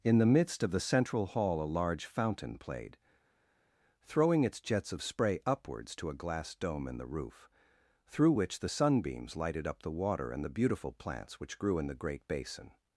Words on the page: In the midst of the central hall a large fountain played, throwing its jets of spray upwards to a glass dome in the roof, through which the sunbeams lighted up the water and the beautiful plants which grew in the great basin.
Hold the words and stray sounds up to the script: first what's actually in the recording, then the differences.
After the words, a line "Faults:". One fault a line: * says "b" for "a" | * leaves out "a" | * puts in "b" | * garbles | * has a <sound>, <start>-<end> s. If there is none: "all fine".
In the midst of the central hall a large fountain played, throwing its jets of spray upwards to a glass dome in the roof, through which the sunbeams lighted up the water and the beautiful plants which grew in the great basin.
Faults:
all fine